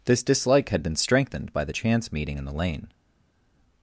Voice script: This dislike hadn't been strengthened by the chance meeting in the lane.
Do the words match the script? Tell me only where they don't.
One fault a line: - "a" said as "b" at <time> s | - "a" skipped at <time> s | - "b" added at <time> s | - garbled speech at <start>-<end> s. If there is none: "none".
- "hadn't" said as "had" at 0.7 s